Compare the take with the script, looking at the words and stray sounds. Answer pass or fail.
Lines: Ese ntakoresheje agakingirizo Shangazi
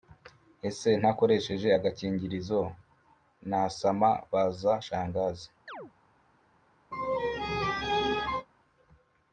fail